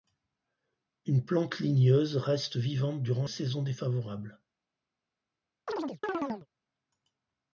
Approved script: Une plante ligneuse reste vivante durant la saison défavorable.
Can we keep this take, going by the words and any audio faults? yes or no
no